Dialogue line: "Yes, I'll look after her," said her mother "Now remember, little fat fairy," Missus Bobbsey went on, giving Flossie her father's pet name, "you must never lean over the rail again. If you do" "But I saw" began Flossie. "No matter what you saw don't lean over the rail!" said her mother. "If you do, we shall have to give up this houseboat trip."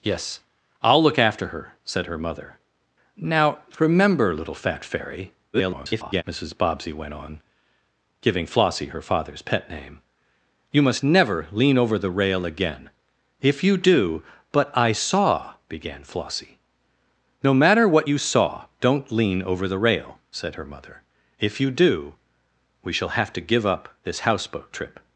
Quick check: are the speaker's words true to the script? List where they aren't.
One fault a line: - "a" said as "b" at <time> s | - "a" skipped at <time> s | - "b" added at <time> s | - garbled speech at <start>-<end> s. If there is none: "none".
- garbled speech at 5.5-6.2 s